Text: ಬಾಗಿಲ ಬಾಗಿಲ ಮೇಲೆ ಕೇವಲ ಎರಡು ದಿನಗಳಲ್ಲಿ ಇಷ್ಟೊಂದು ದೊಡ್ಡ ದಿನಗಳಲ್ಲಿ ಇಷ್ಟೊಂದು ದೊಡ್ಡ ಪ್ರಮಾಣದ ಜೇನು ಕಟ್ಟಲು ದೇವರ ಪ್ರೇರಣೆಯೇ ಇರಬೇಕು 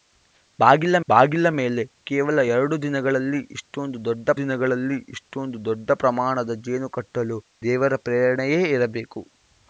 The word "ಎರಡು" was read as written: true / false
true